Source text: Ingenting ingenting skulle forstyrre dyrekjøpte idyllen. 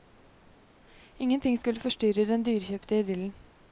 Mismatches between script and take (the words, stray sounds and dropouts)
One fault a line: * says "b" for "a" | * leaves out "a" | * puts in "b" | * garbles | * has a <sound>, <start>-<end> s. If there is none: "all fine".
* leaves out "ingenting"
* puts in "den"